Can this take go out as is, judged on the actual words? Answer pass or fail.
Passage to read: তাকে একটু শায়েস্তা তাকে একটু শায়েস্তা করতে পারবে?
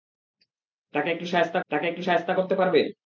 pass